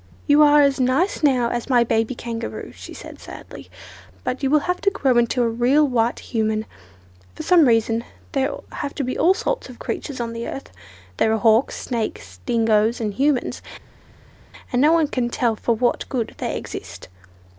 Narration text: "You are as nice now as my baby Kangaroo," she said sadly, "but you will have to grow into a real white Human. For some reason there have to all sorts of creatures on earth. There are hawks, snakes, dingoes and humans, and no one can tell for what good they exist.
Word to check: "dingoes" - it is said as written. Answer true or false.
true